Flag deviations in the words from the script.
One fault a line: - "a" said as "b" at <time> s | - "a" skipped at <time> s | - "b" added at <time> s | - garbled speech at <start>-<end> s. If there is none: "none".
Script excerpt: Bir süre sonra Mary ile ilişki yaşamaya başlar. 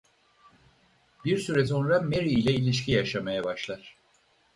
none